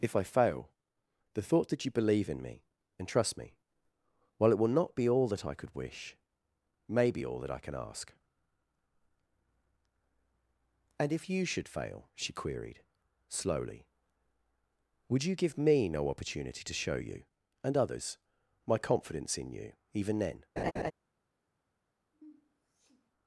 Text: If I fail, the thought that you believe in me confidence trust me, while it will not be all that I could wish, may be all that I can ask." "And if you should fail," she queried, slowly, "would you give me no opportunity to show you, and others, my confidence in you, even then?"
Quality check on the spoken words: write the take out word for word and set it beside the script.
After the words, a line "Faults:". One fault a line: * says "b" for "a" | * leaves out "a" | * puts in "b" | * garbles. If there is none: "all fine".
If I fail, the thought that you believe in me and trust me, while it will not be all that I could wish, may be all that I can ask." "And if you should fail," she queried, slowly, "would you give me no opportunity to show you, and others, my confidence in you, even then?"
Faults:
* says "and" for "confidence"